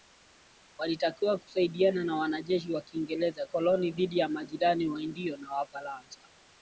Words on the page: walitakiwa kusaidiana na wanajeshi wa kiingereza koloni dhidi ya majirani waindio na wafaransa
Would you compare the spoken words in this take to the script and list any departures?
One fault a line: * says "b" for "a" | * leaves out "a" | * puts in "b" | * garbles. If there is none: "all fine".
all fine